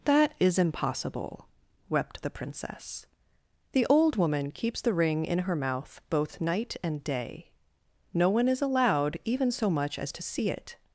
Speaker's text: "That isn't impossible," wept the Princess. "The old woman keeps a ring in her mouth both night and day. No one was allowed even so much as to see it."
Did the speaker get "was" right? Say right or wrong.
wrong